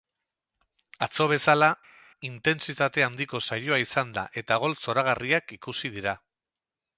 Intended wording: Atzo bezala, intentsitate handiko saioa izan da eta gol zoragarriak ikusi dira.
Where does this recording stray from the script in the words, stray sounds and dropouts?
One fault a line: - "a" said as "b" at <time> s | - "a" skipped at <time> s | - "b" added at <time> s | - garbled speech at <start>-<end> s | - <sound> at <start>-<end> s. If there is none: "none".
none